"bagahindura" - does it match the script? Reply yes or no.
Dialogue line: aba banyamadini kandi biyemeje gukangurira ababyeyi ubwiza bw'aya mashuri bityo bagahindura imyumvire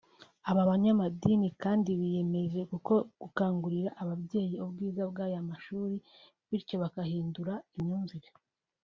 yes